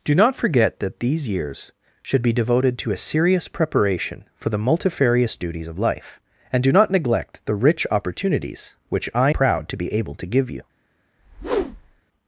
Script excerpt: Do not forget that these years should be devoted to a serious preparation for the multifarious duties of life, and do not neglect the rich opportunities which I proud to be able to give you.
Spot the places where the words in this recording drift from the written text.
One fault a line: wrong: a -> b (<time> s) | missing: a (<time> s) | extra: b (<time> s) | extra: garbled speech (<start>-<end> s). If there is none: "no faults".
no faults